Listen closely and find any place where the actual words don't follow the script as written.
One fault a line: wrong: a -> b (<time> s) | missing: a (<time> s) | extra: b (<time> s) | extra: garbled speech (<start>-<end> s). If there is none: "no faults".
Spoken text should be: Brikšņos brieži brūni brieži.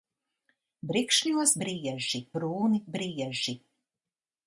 no faults